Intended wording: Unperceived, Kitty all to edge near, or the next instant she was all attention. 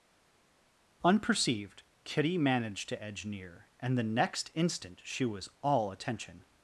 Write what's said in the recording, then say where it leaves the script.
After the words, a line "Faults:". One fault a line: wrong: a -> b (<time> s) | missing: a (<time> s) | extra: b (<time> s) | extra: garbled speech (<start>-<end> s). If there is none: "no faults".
Unperceived, Kitty managed to edge near, and the next instant she was all attention.
Faults:
wrong: all -> managed (2.4 s)
wrong: or -> and (3.8 s)